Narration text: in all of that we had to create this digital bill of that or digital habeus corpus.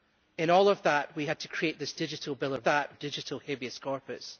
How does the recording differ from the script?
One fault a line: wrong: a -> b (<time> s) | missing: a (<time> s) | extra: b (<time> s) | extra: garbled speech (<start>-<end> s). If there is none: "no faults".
no faults